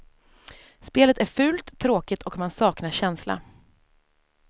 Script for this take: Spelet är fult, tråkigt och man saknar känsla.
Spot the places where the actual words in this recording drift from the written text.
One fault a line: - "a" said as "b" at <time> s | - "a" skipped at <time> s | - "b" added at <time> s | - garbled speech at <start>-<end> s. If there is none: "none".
none